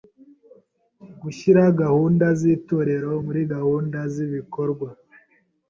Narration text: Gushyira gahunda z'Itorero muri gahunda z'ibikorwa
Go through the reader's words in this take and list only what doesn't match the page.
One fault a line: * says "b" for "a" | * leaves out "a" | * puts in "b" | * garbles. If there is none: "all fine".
all fine